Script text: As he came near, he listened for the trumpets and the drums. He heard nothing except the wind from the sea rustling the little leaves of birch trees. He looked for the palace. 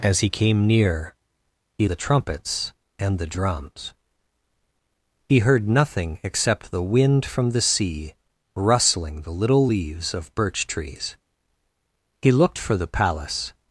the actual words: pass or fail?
fail